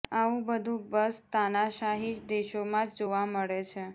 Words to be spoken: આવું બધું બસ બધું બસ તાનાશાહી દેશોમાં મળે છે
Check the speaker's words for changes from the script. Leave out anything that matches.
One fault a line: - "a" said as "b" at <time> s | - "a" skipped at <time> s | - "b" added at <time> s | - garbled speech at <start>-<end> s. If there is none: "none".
- "બધું બસ તાનાશાહી દેશોમાં" said as "તાનાશાહી દેશોમાં જ જોવા" at 1.3 s